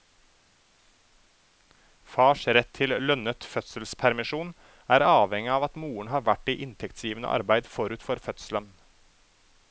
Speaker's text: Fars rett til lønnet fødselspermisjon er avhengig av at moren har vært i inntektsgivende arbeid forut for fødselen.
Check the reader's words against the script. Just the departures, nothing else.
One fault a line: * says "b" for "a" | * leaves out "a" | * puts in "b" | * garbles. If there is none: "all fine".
all fine